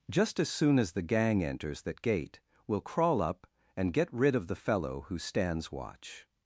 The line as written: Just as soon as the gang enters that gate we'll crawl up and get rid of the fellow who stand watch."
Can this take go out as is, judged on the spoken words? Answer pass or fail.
fail